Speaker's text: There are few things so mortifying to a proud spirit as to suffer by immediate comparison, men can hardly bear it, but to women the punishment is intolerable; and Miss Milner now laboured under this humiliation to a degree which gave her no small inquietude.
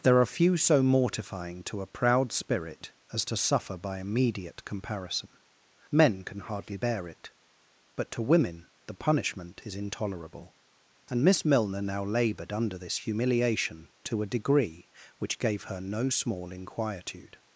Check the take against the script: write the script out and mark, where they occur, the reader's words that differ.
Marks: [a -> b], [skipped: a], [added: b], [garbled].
There are few [skipped: things] so mortifying to a proud spirit as to suffer by immediate comparison, men can hardly bear it, but to women the punishment is intolerable; and Miss Milner now laboured under this humiliation to a degree which gave her no small inquietude.